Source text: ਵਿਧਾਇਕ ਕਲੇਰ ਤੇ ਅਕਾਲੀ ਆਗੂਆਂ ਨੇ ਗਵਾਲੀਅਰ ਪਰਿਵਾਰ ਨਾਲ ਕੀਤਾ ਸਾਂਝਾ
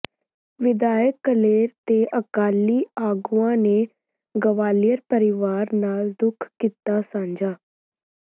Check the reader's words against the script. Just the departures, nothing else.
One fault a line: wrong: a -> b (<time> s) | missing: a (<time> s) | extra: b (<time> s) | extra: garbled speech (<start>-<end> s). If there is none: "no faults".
extra: ਦੁੱਖ (6.2 s)